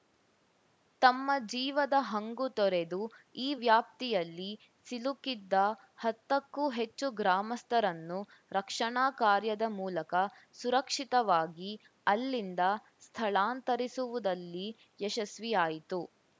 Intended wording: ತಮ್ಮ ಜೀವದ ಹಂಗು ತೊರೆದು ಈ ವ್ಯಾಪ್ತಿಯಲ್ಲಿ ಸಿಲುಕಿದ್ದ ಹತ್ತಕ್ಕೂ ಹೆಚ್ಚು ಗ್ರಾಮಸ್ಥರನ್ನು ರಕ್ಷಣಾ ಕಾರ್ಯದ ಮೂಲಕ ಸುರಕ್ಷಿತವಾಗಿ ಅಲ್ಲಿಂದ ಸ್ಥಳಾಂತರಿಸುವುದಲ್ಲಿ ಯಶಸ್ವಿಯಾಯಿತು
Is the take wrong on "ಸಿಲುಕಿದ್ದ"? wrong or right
right